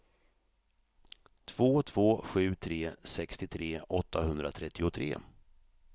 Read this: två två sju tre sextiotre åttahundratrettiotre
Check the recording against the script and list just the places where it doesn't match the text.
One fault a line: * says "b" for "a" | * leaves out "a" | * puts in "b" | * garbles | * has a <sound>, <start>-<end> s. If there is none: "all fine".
all fine